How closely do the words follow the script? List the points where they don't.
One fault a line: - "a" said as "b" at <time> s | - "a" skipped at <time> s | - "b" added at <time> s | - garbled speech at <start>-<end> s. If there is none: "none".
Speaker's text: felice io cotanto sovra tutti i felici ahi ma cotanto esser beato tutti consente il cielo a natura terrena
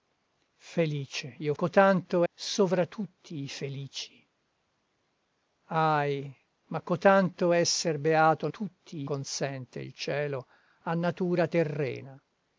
none